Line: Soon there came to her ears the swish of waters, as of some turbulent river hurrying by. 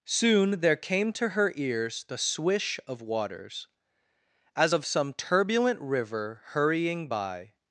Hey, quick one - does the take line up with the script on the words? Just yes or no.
yes